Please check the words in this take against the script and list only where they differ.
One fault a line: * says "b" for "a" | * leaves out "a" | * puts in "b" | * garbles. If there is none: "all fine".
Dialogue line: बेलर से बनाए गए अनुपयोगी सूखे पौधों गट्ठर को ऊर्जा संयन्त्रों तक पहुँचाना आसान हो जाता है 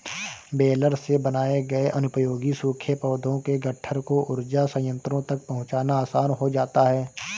* puts in "के"